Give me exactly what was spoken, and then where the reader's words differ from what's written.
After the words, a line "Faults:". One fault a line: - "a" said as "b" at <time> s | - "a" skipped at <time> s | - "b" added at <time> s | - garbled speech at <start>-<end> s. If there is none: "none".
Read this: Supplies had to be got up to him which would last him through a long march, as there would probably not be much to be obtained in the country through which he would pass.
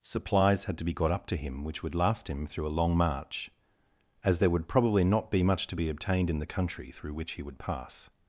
Supplies had to be got up to him which would last him through a long march, as there would probably not be much to be obtained in the country through which he would pass.
Faults:
none